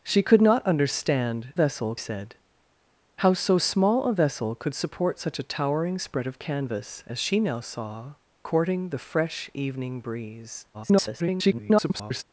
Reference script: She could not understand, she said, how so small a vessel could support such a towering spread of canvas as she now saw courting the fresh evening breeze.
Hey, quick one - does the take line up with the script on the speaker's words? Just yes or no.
no